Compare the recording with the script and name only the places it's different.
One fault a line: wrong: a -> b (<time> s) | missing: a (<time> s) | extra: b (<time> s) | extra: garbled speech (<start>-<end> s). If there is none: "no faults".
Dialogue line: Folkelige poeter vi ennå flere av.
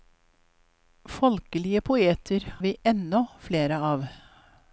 no faults